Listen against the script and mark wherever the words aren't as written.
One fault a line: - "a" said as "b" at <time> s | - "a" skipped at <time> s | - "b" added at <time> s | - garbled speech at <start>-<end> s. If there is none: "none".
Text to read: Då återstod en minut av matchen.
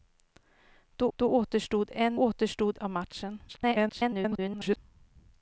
- "då" added at 1.1 s
- "minut" said as "återstod" at 2.2 s
- garbled speech at 3.5-4.8 s